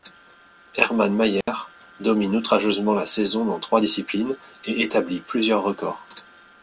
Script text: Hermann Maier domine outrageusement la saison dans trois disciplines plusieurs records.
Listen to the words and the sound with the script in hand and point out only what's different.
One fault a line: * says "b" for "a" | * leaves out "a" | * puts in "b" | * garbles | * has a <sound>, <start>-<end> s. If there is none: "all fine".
* has a dropout, 1.4-1.5 s
* puts in "et établit"